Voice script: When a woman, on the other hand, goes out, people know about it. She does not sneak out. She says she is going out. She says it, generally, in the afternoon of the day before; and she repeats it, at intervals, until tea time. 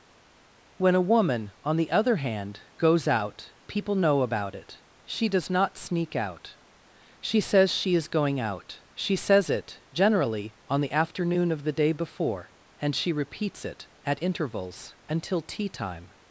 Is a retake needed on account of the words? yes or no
yes